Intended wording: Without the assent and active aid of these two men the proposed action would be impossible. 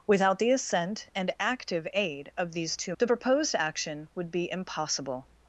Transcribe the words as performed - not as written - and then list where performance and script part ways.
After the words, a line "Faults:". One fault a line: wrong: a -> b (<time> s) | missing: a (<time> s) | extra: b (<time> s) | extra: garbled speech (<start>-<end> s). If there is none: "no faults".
Without the assent and active aid of these two the proposed action would be impossible.
Faults:
missing: men (3.0 s)